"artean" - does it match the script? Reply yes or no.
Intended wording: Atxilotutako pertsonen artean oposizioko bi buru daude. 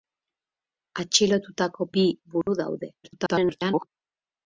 no